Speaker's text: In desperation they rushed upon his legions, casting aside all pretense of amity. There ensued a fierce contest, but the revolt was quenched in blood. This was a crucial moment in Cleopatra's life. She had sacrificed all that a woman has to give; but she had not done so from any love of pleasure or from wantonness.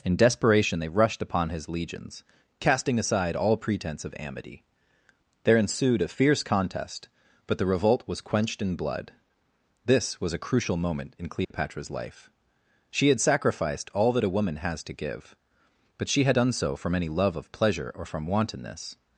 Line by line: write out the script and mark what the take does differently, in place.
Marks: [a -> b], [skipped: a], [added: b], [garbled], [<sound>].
In desperation they rushed upon his legions, casting aside all pretense of amity. There ensued a fierce contest, but the revolt was quenched in blood. This was a crucial moment in Cleopatra's [dropout] life. She had sacrificed all that a woman has to give; but she had [skipped: not] done so from any love of pleasure or from wantonness.